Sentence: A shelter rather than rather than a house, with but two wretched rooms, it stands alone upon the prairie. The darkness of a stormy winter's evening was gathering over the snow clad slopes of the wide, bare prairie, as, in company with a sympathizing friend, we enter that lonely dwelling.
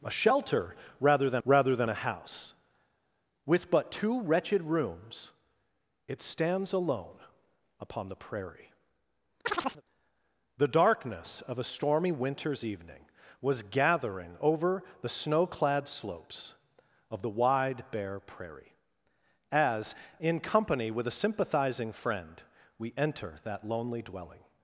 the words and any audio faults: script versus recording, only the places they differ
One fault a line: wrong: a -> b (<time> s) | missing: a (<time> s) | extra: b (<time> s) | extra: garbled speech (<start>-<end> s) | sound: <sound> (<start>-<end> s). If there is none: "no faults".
sound: chirp (9.4-9.8 s)